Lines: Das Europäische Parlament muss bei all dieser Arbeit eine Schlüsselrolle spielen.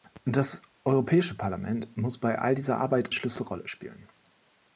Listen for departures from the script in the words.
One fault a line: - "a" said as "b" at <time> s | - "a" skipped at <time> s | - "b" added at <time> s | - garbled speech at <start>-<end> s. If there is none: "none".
- "eine" skipped at 3.1 s